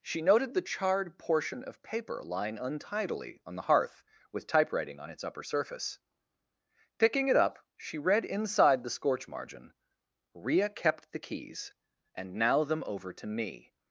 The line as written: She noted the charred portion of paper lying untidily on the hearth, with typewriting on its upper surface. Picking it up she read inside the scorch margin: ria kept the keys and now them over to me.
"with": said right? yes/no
yes